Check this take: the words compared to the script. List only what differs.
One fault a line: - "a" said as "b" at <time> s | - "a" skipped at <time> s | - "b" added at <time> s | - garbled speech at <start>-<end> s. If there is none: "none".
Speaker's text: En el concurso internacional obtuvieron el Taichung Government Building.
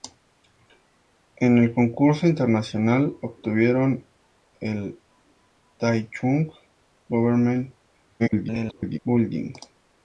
- garbled speech at 8.2-9.0 s